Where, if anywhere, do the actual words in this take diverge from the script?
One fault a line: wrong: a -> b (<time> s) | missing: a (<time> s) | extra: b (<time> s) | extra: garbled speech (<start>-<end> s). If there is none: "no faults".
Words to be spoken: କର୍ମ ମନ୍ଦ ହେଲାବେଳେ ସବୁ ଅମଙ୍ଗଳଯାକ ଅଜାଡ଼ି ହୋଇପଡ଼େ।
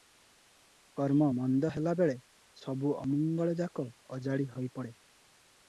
no faults